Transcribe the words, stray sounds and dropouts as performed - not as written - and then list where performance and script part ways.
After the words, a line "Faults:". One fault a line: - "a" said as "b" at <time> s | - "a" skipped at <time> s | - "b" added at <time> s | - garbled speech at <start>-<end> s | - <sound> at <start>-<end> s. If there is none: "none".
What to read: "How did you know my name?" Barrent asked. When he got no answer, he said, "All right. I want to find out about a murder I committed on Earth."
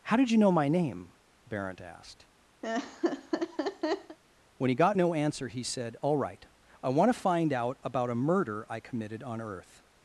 "How did you know my name?" Barrent asked. When he got no answer, he said, "All right. I want to find out about a murder I committed on Earth."
Faults:
- laugh at 2.6-4.2 s